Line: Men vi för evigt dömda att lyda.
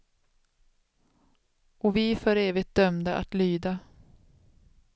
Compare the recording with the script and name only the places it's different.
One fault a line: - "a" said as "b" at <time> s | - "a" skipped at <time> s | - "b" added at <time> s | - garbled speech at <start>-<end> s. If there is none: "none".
- "Men" said as "Och" at 1.8 s